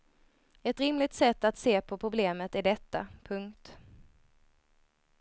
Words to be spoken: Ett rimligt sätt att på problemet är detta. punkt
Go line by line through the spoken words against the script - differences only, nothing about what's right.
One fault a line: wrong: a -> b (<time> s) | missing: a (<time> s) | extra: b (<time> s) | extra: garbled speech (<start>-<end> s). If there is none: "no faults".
extra: se (1.6 s)